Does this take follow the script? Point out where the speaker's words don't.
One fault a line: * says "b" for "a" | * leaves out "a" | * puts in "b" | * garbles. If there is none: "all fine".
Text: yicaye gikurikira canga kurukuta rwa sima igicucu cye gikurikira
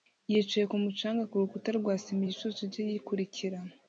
* says "kumu" for "gikurikira"